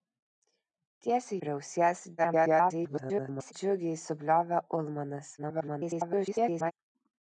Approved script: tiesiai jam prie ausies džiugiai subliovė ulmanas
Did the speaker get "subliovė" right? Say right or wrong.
right